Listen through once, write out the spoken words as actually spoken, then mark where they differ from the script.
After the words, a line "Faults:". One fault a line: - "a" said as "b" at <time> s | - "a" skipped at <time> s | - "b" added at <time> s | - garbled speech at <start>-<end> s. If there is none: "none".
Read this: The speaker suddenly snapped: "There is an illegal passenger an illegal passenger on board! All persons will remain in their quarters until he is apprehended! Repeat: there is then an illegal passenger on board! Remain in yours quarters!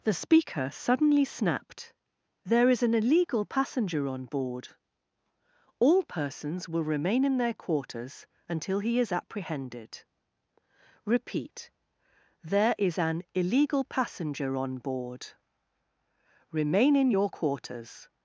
The speaker suddenly snapped: "There is an illegal passenger on board! All persons will remain in their quarters until he is apprehended! Repeat: there is an illegal passenger on board! Remain in your quarters!
Faults:
- "an illegal passenger" skipped at 4.1 s
- "then" skipped at 13.0 s
- "yours" said as "your" at 17.1 s